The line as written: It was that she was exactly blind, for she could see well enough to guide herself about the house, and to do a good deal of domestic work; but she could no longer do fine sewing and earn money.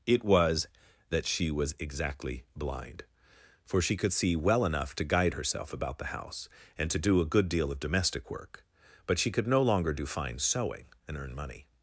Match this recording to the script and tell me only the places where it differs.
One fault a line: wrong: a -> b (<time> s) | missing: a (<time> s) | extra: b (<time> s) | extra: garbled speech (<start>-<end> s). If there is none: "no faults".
no faults